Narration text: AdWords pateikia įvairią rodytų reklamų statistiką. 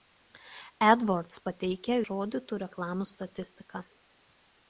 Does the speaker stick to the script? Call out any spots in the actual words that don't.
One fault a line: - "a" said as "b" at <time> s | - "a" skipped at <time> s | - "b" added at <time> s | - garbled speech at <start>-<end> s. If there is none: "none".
- "įvairią" skipped at 2.0 s